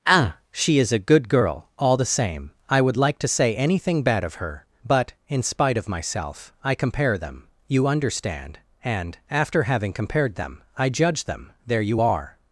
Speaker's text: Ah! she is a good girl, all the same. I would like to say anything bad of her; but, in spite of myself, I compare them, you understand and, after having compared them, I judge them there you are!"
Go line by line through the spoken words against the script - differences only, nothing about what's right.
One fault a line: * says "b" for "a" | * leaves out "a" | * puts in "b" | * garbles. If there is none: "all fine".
all fine